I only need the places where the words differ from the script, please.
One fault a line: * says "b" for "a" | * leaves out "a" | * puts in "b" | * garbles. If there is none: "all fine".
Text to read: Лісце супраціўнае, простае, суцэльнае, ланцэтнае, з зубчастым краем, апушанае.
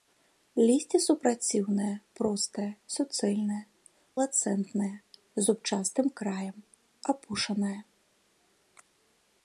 all fine